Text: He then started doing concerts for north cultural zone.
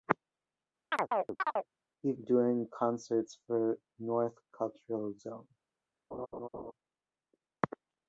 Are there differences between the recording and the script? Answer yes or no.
yes